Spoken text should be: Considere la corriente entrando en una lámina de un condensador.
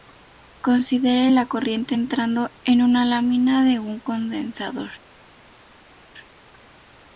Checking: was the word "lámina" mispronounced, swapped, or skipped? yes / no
no